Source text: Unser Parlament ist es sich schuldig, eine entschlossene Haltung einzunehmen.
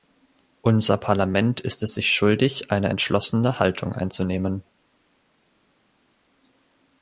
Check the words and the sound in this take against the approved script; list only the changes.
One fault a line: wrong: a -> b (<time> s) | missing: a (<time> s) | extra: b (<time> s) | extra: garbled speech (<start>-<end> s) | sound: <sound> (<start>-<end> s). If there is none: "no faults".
no faults